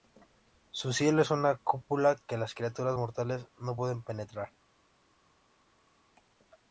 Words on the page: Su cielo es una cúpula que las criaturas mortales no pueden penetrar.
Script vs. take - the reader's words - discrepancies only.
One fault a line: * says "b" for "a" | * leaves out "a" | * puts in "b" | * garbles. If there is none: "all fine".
all fine